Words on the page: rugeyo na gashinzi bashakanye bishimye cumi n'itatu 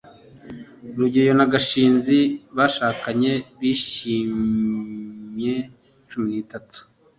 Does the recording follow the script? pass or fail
pass